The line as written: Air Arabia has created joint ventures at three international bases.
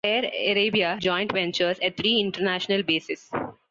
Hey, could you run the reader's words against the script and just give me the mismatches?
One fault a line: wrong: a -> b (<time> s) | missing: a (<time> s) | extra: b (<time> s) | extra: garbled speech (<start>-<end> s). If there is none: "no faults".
missing: has created (1.0 s)